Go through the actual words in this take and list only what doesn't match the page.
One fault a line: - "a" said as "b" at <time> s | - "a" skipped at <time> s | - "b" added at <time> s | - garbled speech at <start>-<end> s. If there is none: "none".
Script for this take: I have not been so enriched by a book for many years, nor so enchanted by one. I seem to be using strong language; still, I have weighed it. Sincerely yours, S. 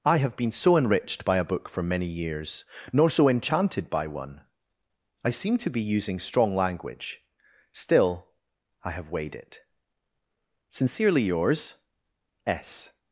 - "not" skipped at 0.3 s